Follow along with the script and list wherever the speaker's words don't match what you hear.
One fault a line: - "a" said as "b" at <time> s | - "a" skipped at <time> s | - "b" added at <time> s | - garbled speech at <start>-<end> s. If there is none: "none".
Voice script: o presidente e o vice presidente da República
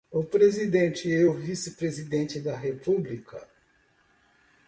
none